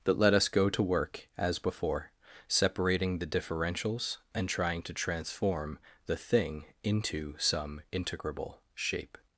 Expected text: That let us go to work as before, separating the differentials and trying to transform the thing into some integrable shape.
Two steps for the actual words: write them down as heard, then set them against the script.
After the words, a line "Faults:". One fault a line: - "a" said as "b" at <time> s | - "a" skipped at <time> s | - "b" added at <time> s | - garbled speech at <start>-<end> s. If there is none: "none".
That let us go to work as before, separating the differentials and trying to transform the thing into some integrable shape.
Faults:
none